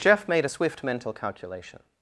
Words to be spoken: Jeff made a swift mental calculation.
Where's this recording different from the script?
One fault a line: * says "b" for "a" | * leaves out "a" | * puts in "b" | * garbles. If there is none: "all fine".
all fine